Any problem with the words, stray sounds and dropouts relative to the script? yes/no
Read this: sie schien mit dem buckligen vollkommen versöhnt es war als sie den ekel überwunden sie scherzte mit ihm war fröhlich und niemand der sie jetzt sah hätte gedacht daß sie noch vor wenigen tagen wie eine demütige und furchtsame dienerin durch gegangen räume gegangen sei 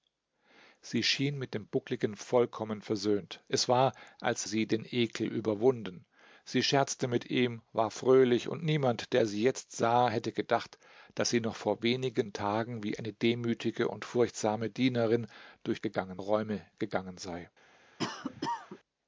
yes